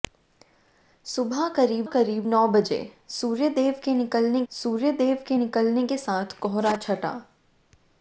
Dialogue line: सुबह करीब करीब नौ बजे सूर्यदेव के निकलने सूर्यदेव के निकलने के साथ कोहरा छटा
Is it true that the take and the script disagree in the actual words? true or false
false